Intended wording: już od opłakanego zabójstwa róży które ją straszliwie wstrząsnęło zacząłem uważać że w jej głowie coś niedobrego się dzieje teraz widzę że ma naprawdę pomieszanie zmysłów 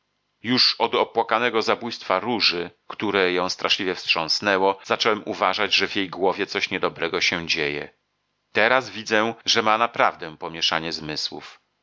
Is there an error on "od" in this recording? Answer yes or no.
no